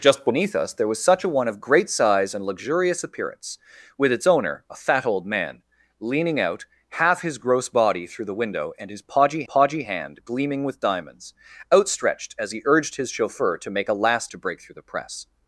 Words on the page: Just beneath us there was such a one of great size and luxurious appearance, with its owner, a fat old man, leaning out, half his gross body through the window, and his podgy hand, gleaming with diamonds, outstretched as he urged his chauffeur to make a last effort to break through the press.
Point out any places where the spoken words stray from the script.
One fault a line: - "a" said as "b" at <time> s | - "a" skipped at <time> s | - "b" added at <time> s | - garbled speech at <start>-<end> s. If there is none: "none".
- "podgy" added at 9.4 s
- "effort" skipped at 14.3 s